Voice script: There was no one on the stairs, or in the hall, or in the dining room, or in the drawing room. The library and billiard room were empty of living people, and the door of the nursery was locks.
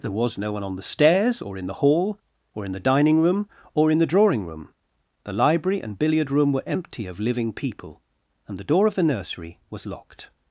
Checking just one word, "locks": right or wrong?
wrong